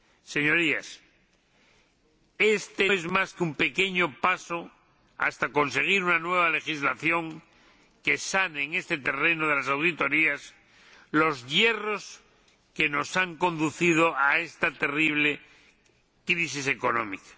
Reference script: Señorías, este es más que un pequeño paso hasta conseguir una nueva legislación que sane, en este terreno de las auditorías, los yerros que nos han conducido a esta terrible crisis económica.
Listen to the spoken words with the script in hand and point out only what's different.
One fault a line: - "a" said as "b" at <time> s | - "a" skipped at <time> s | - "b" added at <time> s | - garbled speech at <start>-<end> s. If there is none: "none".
none